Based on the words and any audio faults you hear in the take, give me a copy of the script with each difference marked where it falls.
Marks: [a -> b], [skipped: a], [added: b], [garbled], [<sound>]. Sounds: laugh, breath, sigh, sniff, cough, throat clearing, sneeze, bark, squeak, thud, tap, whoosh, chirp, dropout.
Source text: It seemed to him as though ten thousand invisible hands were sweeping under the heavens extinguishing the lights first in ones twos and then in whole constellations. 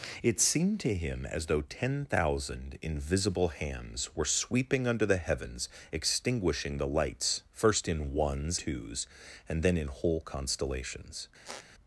It seemed to him as though ten thousand invisible hands were sweeping under the heavens extinguishing the lights first in ones twos and then in whole constellations. [squeak]